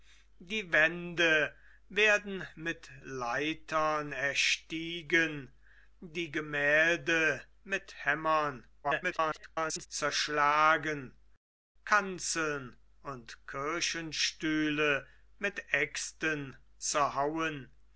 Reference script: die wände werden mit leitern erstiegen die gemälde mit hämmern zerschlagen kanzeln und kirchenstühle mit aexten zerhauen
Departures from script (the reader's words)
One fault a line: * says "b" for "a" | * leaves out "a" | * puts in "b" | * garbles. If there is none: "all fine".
* garbles